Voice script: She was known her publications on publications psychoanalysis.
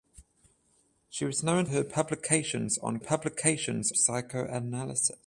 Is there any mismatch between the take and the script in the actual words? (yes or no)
no